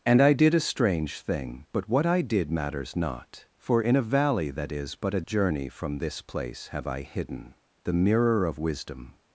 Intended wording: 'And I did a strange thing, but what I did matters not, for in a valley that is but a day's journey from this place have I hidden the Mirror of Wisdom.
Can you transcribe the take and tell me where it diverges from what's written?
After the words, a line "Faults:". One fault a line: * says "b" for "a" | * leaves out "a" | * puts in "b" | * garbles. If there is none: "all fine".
'And I did a strange thing, but what I did matters not, for in a valley that is but a journey from this place have I hidden the Mirror of Wisdom.
Faults:
* leaves out "day's"